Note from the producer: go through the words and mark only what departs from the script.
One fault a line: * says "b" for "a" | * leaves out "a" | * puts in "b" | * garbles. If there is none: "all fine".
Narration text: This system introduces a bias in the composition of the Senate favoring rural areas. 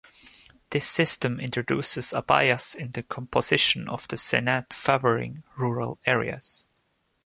all fine